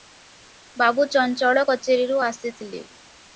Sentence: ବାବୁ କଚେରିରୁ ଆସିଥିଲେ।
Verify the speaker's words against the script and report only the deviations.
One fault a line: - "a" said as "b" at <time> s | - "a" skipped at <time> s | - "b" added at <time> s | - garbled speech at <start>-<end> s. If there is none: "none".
- "ଚଞ୍ଚଳ" added at 1.1 s